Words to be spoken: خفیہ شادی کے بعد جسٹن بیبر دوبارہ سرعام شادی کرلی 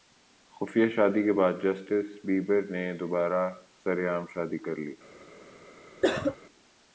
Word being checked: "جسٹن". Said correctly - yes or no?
yes